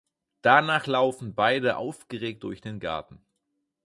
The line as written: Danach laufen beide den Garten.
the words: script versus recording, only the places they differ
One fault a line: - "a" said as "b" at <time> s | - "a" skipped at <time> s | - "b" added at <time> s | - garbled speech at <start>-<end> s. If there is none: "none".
- "aufgeregt durch" added at 1.8 s